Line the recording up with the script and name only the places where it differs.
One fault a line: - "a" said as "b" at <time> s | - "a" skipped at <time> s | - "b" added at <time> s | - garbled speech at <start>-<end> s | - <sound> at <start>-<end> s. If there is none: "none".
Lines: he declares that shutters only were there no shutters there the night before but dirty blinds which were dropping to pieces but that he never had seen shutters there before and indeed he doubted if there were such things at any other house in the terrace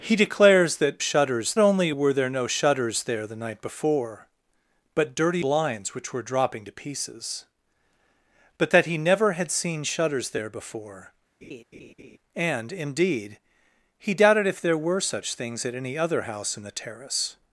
- laugh at 11.4-12.2 s